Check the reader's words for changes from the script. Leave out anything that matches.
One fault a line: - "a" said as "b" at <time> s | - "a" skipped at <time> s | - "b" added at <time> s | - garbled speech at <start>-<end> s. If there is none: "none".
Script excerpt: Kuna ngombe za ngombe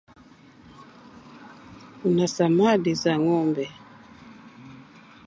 - "ngombe" said as "samadi" at 2.3 s